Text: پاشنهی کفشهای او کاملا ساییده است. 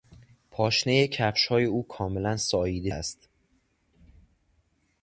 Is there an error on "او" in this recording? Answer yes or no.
no